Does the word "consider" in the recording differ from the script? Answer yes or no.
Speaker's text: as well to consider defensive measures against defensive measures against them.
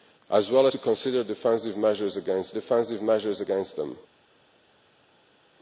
no